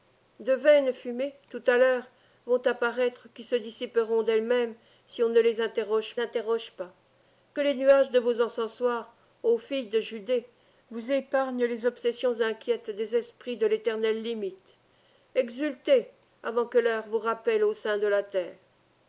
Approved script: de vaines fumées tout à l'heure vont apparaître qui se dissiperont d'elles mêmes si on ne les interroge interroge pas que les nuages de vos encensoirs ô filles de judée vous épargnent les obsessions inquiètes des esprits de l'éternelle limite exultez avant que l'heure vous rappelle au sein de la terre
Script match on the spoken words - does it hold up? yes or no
yes